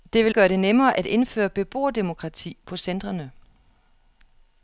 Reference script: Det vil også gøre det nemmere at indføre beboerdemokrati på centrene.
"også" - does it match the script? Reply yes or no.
no